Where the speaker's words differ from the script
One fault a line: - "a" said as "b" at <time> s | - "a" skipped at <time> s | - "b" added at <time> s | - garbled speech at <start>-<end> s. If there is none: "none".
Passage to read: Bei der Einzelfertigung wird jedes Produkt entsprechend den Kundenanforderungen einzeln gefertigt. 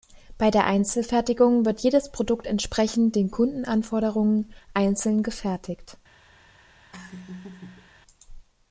none